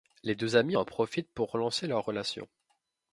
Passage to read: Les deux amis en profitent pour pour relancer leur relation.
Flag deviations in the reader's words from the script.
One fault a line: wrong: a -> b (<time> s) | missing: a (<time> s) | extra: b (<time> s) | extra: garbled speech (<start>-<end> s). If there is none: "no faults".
missing: pour (1.5 s)